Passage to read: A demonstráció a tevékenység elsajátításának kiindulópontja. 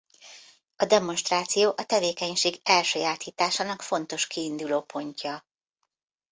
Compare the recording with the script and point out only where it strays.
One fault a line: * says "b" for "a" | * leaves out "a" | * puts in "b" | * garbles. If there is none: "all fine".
* puts in "fontos"